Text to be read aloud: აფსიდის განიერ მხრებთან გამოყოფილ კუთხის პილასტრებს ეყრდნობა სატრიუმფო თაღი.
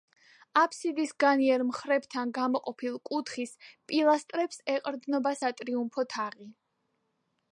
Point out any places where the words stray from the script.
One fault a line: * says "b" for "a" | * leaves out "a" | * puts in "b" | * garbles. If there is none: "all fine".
all fine